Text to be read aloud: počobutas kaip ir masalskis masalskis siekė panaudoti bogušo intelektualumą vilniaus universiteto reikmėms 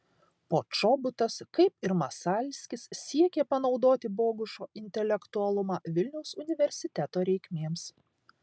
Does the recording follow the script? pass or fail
fail